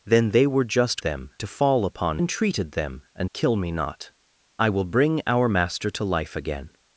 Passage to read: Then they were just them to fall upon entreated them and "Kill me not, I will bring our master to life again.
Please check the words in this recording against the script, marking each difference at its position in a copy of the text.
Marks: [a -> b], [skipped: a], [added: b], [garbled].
Then they were just them to fall upon entreated them and "Kill me not, I will bring our master to life again.